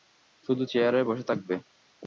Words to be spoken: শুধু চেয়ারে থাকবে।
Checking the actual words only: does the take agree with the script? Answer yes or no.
no